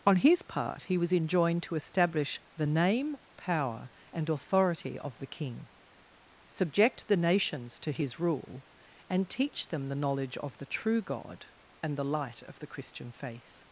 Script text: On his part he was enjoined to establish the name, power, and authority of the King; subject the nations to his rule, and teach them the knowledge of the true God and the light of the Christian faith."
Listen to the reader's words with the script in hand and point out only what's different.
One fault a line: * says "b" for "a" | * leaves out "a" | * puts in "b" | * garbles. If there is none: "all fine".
all fine